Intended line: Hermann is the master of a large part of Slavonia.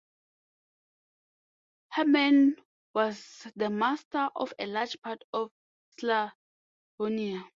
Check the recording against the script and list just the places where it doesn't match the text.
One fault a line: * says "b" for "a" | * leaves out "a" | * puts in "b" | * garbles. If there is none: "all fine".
* says "was" for "is"